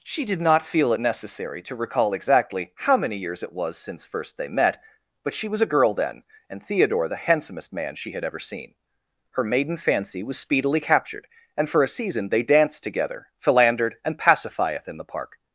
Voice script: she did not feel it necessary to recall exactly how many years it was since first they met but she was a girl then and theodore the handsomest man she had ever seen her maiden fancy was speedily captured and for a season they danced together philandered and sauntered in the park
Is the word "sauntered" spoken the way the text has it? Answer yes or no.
no